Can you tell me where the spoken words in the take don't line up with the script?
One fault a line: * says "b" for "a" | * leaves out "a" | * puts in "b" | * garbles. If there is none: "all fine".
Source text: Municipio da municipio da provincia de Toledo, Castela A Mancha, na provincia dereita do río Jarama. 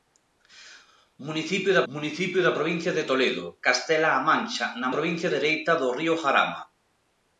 all fine